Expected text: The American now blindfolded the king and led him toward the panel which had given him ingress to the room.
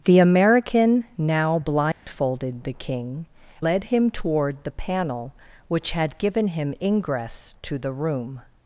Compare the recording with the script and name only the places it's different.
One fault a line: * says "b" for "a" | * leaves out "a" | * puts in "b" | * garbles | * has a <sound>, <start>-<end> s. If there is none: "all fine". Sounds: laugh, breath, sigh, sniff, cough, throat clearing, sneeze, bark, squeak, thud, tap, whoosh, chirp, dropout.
* has a dropout, 1.9-2.1 s
* leaves out "and"